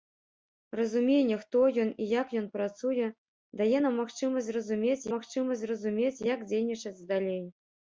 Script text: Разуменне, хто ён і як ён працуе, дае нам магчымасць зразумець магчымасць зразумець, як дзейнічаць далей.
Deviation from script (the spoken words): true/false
false